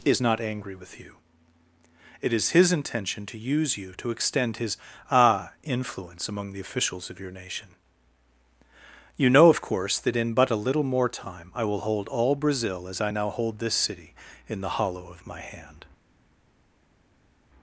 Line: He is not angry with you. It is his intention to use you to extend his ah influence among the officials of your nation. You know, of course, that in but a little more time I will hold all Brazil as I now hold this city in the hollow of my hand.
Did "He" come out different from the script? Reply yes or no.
yes